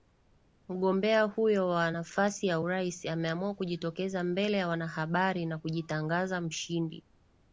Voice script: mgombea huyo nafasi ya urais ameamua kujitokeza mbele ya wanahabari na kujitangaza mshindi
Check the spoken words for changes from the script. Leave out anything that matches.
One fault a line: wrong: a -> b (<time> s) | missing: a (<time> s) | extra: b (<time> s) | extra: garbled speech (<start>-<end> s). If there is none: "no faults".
extra: wa (1.7 s)